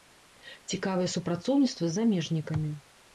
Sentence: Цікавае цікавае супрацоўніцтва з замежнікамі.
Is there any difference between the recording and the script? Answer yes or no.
yes